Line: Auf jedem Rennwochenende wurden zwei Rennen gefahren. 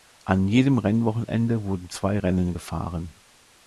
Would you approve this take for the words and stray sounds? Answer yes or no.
no